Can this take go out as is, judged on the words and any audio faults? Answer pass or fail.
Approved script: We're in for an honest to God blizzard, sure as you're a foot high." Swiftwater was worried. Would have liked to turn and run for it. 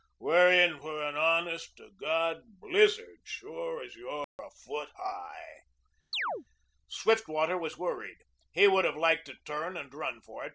fail